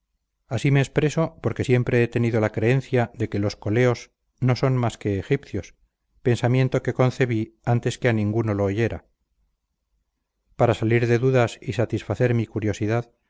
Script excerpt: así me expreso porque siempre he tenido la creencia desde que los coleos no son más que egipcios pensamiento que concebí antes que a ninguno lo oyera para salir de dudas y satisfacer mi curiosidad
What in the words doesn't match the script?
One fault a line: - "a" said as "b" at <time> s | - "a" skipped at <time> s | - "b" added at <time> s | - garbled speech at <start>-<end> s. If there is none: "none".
- "desde" said as "de" at 3.1 s